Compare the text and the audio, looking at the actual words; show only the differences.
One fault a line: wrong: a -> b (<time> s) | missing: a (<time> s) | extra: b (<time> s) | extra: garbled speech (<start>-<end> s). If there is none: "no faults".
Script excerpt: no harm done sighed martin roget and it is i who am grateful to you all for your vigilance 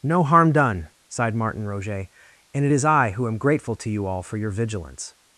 no faults